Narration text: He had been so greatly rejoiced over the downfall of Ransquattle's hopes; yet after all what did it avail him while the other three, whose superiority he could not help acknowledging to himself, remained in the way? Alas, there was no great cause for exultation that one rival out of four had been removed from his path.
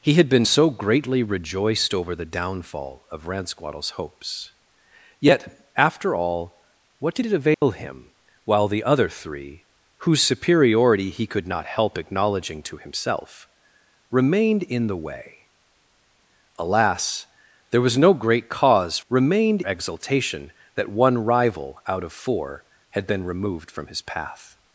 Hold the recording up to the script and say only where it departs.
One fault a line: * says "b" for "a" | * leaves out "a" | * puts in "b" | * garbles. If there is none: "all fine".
* says "remained" for "for"